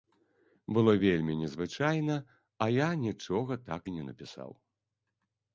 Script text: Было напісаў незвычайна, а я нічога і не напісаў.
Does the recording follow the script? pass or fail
fail